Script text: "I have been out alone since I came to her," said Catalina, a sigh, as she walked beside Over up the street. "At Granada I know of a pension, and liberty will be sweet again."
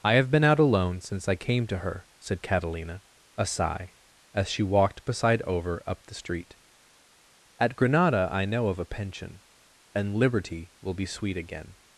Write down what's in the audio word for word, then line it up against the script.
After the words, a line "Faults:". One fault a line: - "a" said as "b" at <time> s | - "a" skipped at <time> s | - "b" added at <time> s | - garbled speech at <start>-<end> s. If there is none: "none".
"I have been out alone since I came to her," said Catalina, a sigh, as she walked beside Over up the street. "At Granada I know of a pension, and liberty will be sweet again."
Faults:
none